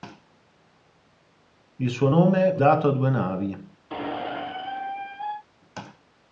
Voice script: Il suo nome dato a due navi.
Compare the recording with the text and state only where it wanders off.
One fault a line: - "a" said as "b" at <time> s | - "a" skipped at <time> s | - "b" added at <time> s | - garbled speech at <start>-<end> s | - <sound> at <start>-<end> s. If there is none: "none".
- squeak at 3.9-5.4 s